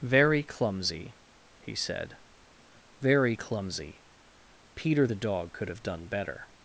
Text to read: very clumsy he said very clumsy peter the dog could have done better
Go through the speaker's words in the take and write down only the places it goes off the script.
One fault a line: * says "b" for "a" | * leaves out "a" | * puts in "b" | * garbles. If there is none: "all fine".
all fine